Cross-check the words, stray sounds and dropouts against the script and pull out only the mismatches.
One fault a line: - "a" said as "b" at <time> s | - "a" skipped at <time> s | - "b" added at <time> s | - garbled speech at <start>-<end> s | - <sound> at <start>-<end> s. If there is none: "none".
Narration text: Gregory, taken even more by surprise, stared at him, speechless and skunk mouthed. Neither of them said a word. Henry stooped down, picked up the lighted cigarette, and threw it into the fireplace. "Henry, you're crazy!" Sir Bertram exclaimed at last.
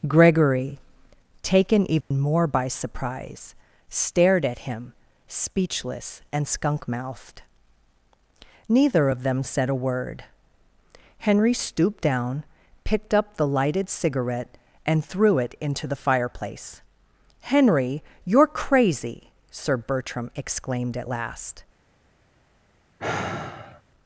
- dropout at 2.0-2.1 s
- sigh at 23.0-23.8 s